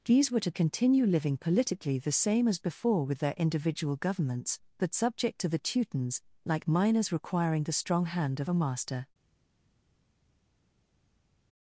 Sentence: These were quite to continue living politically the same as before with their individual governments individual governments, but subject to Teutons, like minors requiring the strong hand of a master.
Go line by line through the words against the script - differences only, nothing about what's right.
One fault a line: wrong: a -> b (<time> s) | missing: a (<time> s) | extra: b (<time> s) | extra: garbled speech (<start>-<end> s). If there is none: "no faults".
missing: quite (0.4 s)
missing: individual governments (4.6 s)
extra: the (5.5 s)